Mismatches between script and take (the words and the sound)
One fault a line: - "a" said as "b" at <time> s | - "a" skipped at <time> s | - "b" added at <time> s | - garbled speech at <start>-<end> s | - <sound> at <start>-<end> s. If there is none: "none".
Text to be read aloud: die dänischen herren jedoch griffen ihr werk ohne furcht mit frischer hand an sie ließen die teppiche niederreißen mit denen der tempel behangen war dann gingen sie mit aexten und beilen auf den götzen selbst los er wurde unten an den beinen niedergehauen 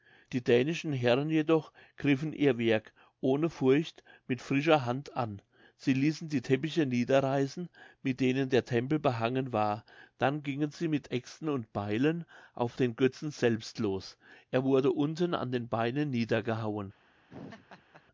- laugh at 17.3-18.0 s